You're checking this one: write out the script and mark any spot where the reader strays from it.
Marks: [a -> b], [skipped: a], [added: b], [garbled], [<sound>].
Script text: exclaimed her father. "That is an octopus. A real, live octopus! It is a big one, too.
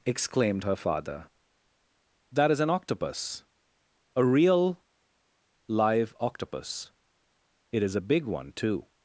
exclaimed her father. "That is an octopus. A real, live octopus! It is a big one, too.